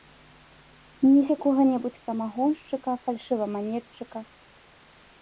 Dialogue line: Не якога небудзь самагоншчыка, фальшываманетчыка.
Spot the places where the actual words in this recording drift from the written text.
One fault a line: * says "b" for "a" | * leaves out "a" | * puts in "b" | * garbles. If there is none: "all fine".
all fine